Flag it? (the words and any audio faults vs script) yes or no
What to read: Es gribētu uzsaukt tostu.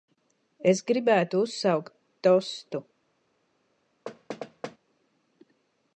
yes